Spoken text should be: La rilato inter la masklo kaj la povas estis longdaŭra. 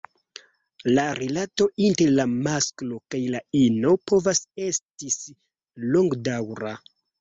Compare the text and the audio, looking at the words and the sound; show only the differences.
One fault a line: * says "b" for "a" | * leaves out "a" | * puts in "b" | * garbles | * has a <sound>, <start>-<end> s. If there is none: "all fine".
* puts in "ino"